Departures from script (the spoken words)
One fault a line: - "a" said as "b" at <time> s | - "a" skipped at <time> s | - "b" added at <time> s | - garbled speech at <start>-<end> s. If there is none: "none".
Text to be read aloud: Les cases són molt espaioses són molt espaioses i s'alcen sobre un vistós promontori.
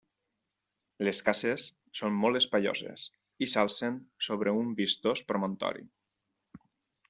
- "són molt espaioses" skipped at 3.0 s